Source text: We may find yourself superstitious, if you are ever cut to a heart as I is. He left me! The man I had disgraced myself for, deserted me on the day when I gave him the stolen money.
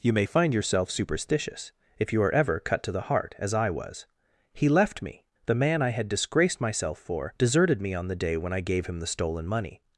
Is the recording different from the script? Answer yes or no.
yes